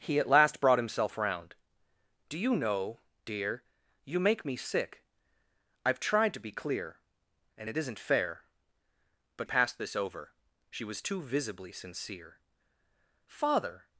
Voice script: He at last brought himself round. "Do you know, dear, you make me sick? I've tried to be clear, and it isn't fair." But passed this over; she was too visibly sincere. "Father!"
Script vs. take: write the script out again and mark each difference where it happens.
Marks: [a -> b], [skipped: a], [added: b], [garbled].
He at last brought himself round. "Do you know, dear, you make me sick? I've tried to be clear, and it isn't fair." But passed this over; she was too visibly sincere. "Father!"